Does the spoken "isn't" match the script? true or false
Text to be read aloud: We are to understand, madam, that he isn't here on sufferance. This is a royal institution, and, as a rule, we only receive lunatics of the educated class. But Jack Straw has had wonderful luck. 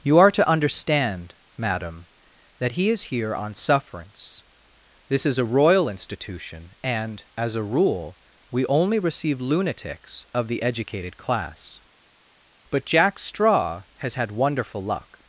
false